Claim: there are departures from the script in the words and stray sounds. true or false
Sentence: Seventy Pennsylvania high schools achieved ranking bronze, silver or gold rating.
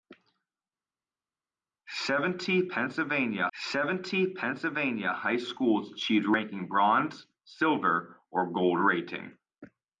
true